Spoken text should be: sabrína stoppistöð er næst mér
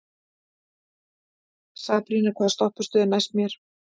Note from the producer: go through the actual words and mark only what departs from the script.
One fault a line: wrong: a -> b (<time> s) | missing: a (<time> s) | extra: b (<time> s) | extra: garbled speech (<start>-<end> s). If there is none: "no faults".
extra: hvaða (2.4 s)